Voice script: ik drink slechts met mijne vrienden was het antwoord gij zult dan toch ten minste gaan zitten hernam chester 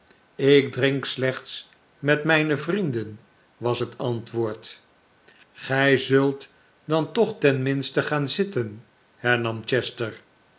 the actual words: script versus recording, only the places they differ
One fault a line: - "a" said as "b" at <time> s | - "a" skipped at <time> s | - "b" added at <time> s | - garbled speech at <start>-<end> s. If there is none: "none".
none